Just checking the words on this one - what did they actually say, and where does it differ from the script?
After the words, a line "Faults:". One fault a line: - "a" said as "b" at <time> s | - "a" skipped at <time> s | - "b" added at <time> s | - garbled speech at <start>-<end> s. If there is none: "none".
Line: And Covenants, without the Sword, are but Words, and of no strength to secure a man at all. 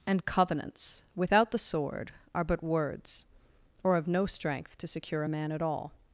And Covenants, without the Sword, are but Words, or of no strength to secure a man at all.
Faults:
- "and" said as "or" at 3.8 s